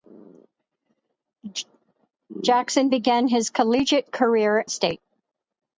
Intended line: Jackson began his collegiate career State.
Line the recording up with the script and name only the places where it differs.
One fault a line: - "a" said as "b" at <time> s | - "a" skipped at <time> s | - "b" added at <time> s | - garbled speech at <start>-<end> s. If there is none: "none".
none